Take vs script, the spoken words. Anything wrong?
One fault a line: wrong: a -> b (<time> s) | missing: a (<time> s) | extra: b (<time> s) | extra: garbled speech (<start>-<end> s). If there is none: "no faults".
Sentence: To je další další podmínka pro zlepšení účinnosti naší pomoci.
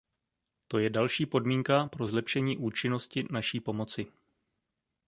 missing: další (1.2 s)